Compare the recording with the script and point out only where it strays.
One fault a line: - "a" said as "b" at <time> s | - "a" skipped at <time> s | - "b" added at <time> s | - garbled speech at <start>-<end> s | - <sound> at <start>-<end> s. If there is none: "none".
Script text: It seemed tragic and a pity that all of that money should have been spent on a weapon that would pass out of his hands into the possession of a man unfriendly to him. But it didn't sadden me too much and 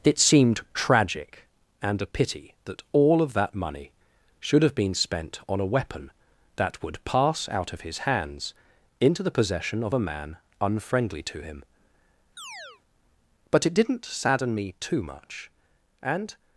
- chirp at 12.4-12.8 s